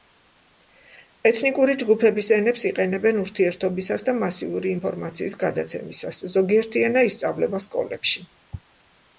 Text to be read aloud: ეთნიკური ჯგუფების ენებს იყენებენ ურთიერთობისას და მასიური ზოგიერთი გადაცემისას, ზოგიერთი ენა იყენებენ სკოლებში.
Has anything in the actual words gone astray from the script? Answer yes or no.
yes